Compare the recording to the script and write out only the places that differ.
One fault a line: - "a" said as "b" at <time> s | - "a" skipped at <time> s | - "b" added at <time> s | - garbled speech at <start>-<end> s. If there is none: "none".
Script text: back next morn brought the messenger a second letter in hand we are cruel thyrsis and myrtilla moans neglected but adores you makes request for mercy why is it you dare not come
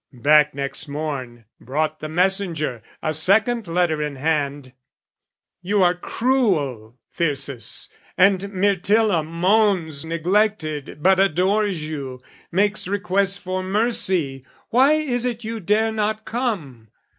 - "we" said as "you" at 5.6 s